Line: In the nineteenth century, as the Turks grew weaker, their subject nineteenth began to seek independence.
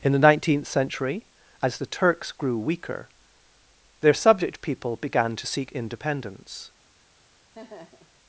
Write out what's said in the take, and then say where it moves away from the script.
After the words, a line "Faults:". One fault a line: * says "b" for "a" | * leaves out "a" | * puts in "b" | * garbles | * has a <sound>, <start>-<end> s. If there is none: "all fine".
In the nineteenth century, as the Turks grew weaker, their subject people began to seek independence.
Faults:
* says "people" for "nineteenth"
* has a laugh, 7.5-8.2 s